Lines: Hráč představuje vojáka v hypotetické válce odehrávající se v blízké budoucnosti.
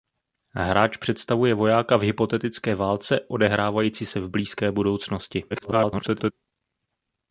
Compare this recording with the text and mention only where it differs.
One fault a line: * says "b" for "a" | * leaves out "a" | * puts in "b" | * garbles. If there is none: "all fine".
* garbles